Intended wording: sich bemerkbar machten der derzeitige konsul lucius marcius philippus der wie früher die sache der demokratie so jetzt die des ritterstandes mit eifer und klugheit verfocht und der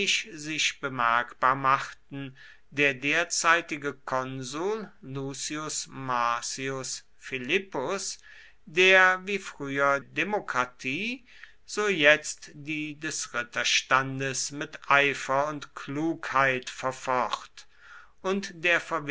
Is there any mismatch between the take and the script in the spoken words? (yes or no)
yes